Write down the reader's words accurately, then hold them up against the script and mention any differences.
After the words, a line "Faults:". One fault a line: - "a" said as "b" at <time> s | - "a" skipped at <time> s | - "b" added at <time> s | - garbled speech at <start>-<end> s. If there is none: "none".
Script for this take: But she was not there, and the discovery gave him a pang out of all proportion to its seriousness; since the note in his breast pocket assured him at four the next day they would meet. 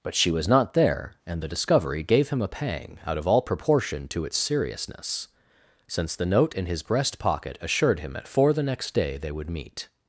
But she was not there, and the discovery gave him a pang out of all proportion to its seriousness; since the note in his breast pocket assured him at four the next day they would meet.
Faults:
none